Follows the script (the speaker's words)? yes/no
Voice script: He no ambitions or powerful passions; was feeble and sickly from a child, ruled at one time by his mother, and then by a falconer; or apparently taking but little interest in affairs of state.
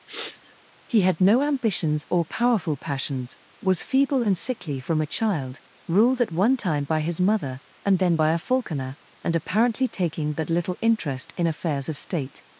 no